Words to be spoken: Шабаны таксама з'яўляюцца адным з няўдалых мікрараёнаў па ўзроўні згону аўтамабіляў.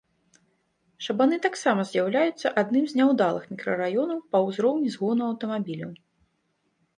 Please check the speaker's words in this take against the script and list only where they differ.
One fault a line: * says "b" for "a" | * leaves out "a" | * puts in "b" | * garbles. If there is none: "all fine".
all fine